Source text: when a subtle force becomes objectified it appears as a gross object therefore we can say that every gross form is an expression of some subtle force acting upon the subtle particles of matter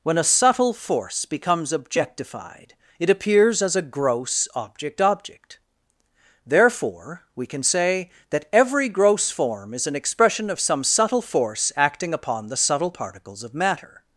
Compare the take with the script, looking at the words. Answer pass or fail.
fail